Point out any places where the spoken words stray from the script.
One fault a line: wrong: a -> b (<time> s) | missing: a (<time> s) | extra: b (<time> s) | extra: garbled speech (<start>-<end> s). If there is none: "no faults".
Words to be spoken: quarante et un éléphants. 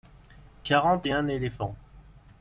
no faults